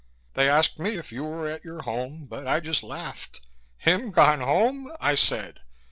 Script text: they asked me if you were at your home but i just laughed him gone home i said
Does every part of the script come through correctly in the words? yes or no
yes